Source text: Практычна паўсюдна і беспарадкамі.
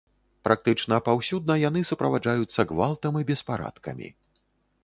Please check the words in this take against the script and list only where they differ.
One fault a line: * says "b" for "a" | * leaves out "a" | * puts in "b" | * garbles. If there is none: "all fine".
* puts in "яны суправаджаюцца гвалтам"